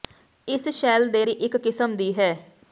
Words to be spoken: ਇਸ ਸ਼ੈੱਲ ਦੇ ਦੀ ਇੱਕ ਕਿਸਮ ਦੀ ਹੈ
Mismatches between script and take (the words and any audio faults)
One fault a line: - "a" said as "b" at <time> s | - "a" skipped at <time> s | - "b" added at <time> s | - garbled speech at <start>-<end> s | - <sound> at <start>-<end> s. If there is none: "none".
none